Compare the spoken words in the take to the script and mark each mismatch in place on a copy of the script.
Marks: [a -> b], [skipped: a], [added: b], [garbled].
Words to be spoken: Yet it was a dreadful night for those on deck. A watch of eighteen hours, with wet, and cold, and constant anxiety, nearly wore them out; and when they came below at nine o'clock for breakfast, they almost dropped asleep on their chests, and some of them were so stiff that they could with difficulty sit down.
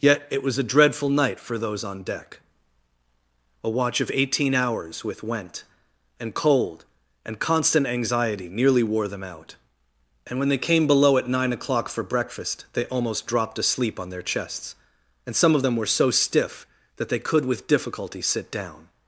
Yet it was a dreadful night for those on deck. A watch of eighteen hours, with [wet, -> went] and cold, and constant anxiety, nearly wore them out; and when they came below at nine o'clock for breakfast, they almost dropped asleep on their chests, and some of them were so stiff that they could with difficulty sit down.